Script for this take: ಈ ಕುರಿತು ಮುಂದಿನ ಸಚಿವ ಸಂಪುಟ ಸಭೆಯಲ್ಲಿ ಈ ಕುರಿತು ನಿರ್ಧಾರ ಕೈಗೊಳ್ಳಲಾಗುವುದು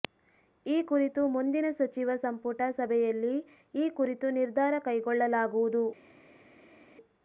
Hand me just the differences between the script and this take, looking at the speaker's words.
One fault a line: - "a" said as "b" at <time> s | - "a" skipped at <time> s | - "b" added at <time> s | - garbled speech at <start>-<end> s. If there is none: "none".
none